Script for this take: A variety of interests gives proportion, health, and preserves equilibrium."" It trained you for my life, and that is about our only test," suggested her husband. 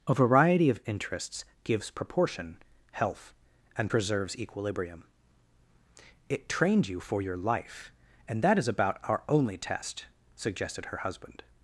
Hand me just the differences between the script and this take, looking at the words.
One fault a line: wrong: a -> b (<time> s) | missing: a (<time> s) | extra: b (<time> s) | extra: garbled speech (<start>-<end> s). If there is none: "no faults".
wrong: my -> your (7.2 s)